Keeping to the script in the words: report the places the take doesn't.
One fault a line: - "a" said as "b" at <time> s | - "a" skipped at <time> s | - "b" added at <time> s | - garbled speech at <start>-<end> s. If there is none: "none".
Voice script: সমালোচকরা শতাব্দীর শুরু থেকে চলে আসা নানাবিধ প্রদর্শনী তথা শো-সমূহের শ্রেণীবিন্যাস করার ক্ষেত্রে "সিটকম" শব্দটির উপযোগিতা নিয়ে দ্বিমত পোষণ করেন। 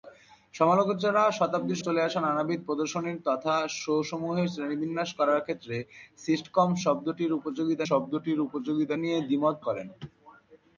- "শুরু থেকে" skipped at 1.8 s
- "শব্দটির উপযোগিতা" added at 7.9 s
- "পোষণ" skipped at 9.6 s